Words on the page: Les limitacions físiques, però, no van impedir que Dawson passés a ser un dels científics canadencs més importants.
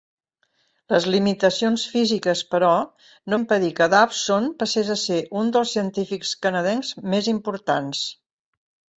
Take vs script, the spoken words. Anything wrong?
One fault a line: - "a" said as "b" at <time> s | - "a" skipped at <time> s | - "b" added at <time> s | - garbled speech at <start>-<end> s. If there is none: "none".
- "van" skipped at 3.4 s